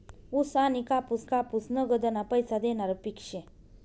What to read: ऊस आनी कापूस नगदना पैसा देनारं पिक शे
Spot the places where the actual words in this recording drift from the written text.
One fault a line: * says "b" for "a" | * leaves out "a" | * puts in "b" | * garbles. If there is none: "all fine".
* puts in "कापूस"